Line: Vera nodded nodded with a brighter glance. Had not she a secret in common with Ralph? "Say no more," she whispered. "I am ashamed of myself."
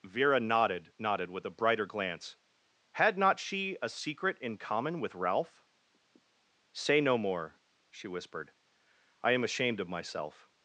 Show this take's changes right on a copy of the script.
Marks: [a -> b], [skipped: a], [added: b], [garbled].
Vera nodded nodded with a brighter glance. Had not she a secret in common with Ralph? "Say no more," she whispered. "I am ashamed of myself."